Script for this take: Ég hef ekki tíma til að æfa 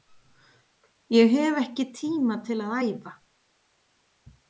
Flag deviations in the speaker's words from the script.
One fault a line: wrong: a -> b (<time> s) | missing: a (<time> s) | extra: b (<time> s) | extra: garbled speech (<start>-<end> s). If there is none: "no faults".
no faults